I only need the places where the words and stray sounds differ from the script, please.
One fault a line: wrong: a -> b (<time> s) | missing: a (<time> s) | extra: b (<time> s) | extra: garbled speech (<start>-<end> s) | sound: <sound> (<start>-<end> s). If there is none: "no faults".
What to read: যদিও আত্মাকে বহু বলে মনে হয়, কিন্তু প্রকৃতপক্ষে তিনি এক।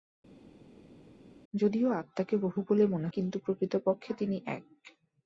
missing: হয় (3.1 s)